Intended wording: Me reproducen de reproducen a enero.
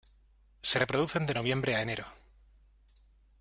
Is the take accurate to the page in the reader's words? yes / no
no